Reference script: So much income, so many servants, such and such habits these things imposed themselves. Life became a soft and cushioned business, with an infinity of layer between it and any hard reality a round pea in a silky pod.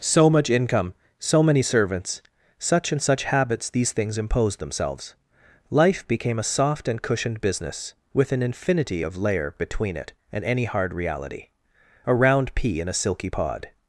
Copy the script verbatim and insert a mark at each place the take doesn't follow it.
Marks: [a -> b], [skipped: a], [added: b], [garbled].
So much income, so many servants, such and such habits these things imposed themselves. Life became a soft and cushioned business, with an infinity of layer between it and any hard reality a round pea in a silky pod.